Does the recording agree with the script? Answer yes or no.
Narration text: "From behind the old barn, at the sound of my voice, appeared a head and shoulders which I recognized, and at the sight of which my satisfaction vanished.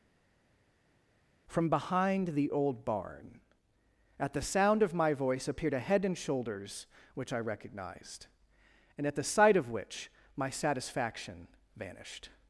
yes